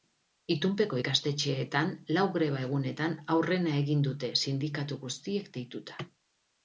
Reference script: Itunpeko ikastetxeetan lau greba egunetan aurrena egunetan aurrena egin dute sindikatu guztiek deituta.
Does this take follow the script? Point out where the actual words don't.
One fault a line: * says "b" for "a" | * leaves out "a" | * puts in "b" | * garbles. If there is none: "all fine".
* leaves out "egunetan aurrena"